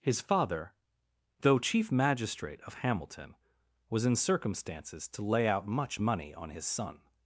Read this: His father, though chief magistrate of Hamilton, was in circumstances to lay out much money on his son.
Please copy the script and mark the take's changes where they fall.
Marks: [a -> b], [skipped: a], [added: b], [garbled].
His father, though chief magistrate of Hamilton, was in circumstances to lay out much money on his son.